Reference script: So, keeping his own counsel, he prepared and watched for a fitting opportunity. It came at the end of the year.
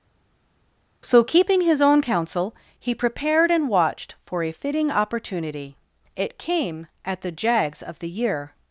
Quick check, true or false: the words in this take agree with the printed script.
false